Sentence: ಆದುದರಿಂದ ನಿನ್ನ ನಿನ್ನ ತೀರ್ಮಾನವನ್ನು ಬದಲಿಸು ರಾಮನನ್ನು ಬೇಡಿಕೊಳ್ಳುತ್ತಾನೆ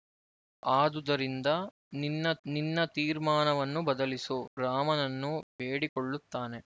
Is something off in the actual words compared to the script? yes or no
no